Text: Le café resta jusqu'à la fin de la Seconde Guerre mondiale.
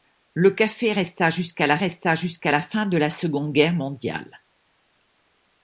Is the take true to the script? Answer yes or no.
no